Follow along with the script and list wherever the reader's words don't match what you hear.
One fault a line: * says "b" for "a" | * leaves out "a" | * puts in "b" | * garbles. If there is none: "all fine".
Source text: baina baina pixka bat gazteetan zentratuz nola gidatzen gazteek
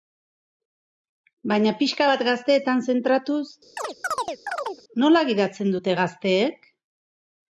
* leaves out "baina"
* puts in "dute"